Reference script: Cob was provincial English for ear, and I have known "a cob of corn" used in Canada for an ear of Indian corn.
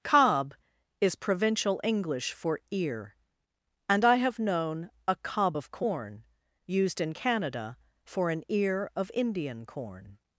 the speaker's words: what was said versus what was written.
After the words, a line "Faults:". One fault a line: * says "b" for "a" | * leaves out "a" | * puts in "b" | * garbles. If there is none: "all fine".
Cob is provincial English for ear, and I have known "a cob of corn" used in Canada for an ear of Indian corn.
Faults:
* says "is" for "was"